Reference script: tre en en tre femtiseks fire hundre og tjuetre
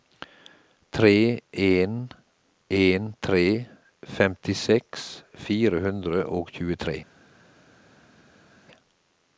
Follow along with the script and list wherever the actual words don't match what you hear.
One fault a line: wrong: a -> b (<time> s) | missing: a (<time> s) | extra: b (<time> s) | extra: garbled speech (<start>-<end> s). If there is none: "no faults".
no faults